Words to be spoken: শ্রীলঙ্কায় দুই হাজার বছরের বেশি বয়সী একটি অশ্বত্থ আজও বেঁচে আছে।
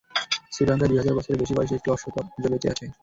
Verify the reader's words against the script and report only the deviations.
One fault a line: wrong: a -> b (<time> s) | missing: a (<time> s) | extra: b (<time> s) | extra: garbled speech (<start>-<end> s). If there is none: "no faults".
no faults